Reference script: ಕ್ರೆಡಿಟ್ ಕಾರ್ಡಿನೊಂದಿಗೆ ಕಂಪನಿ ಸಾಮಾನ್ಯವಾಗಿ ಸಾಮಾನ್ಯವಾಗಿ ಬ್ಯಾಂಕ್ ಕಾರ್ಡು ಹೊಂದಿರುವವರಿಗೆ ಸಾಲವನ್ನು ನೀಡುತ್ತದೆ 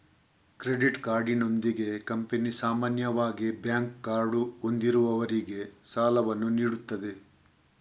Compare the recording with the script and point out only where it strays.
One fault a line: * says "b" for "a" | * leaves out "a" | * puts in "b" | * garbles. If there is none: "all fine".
* leaves out "ಸಾಮಾನ್ಯವಾಗಿ"